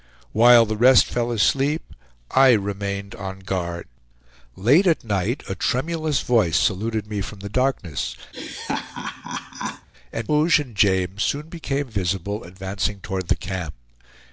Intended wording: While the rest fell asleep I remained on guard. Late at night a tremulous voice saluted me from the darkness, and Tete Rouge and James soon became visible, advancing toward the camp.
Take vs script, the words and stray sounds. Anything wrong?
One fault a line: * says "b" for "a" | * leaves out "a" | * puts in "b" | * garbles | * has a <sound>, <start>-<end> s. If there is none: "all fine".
* has a laugh, 8.3-9.9 s
* leaves out "Tete"